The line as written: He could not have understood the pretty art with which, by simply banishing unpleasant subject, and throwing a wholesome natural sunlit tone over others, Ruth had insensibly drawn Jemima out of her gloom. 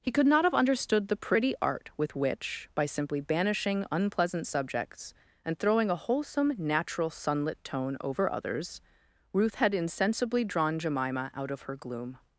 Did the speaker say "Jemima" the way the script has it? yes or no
yes